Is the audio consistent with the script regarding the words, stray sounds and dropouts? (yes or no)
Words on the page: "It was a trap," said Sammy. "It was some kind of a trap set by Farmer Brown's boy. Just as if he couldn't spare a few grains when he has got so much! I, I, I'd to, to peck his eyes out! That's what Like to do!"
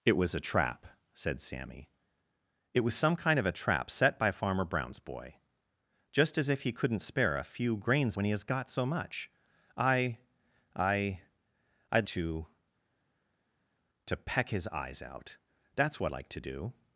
yes